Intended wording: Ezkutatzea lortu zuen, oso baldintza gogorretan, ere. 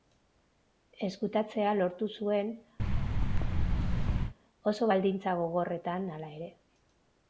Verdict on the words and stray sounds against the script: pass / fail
fail